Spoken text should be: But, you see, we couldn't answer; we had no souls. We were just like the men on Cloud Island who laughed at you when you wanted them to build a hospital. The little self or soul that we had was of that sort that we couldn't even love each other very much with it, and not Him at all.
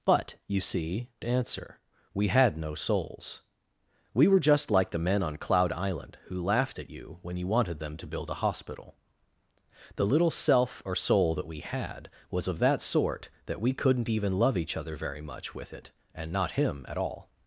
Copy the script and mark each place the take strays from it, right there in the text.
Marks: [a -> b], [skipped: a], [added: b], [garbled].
But, you see, [skipped: we couldn't] answer; we had no souls. We were just like the men on Cloud Island who laughed at you when you wanted them to build a hospital. The little self or soul that we had was of that sort that we couldn't even love each other very much with it, and not Him at all.